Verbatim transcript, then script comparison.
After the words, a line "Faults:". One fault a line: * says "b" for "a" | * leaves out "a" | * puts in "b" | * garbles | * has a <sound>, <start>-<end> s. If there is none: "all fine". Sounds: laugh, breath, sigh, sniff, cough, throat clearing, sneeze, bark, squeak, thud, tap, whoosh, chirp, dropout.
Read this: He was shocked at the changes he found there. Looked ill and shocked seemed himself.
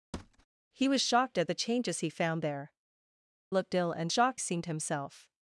He was shocked at the changes he found there. Looked ill and shocked seemed himself.
Faults:
* has a thud, 0.1-0.5 s